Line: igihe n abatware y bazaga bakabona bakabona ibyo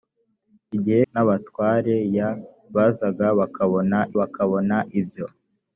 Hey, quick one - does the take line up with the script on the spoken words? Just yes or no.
yes